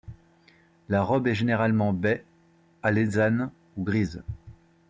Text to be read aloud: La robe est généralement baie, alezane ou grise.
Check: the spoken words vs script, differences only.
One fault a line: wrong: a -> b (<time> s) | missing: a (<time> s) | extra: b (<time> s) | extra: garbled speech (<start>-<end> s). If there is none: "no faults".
no faults